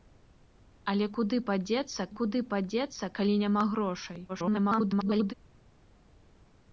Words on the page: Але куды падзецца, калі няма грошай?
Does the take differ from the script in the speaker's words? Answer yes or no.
yes